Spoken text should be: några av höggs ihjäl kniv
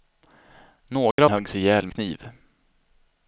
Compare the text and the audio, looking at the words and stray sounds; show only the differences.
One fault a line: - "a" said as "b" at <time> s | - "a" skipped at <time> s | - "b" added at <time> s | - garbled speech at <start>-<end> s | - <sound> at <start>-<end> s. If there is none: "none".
- dropout at 1.1-1.2 s